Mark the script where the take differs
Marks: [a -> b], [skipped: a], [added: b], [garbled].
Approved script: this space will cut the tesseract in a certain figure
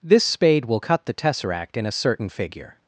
this [space -> spade] will cut the tesseract in a certain figure